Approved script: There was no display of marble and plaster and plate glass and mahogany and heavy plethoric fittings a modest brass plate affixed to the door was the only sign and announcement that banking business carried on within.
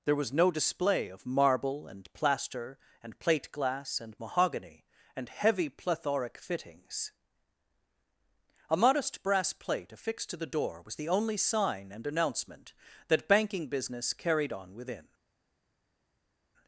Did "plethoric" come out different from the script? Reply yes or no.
no